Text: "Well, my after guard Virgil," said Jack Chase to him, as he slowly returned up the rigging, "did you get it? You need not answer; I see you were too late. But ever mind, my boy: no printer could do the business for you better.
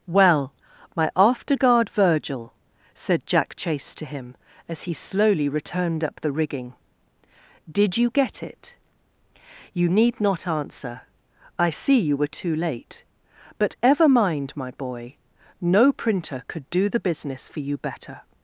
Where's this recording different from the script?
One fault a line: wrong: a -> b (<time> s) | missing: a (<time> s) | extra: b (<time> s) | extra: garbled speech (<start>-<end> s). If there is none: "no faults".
no faults